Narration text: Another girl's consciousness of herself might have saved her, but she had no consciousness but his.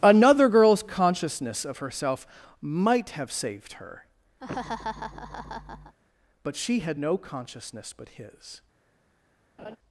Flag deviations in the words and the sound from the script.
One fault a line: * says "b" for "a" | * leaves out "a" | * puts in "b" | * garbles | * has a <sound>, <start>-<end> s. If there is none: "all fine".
* has a laugh, 4.4-6.0 s
* has a laugh, 9.6-9.8 s